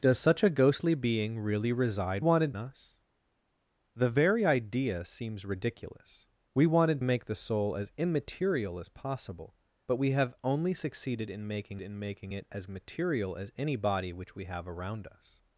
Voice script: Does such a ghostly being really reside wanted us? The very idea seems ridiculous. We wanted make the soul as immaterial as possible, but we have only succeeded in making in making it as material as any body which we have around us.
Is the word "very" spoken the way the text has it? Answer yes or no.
yes